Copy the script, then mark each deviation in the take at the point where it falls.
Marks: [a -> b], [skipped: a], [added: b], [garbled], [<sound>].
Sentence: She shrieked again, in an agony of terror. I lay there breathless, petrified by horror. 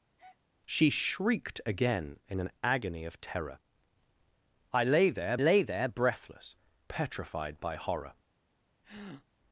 [breath] She shrieked again, in an agony of terror. I lay there [added: lay there] breathless, petrified by horror. [breath]